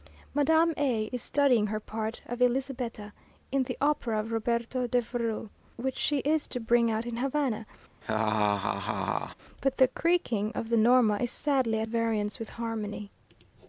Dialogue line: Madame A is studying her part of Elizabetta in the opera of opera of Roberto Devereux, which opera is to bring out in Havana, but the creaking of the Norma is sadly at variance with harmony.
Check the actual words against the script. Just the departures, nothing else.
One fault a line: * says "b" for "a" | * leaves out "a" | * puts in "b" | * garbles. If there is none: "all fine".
* leaves out "opera of"
* says "she" for "opera"